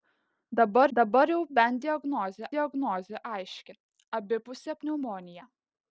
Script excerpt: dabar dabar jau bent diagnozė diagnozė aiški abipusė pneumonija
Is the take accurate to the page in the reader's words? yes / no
yes